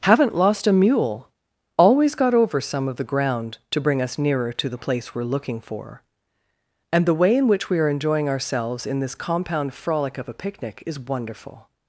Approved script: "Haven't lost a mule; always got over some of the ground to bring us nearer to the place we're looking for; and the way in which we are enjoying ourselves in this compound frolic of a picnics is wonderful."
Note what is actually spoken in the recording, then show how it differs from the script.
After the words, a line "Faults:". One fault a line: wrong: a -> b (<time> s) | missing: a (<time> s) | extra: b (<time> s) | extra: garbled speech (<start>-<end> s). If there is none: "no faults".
"Haven't lost a mule; always got over some of the ground to bring us nearer to the place we're looking for; and the way in which we are enjoying ourselves in this compound frolic of a picnic is wonderful."
Faults:
wrong: picnics -> picnic (10.3 s)